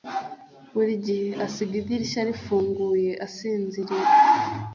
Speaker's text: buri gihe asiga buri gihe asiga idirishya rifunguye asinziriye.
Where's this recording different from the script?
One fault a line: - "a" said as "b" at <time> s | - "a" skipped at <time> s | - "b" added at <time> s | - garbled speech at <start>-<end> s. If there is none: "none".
- "buri gihe asiga" skipped at 1.7 s